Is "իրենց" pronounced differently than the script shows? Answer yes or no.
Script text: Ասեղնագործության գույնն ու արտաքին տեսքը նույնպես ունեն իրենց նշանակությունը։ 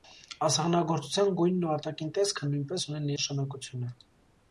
yes